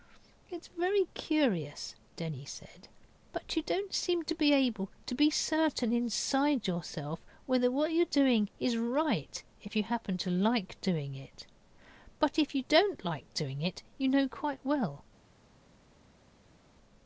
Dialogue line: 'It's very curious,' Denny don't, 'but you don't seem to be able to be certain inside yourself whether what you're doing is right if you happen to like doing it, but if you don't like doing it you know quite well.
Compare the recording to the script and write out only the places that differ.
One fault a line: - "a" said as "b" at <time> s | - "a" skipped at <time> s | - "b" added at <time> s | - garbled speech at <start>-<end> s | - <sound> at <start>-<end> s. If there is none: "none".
- "don't" said as "said" at 2.4 s